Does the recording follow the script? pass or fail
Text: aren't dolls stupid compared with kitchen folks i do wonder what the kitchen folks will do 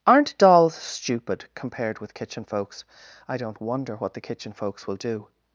fail